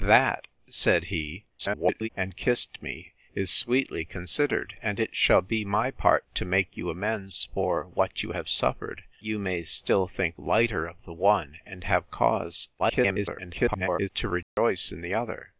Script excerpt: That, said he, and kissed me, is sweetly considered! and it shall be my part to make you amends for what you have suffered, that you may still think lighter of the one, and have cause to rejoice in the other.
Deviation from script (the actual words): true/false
true